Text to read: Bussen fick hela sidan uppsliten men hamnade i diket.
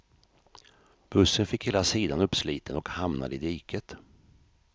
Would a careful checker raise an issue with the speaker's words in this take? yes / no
yes